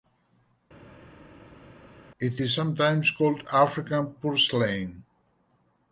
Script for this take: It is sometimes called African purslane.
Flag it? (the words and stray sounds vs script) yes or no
no